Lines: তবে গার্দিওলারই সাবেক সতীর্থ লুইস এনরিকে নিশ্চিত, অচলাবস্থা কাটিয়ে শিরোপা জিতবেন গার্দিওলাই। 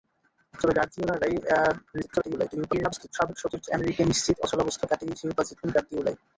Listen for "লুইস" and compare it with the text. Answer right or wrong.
wrong